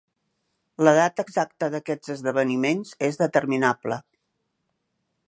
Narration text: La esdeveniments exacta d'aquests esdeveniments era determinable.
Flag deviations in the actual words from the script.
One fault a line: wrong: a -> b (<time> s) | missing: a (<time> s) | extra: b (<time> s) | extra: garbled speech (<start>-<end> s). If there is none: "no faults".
wrong: esdeveniments -> data (1.0 s)
wrong: era -> és (3.1 s)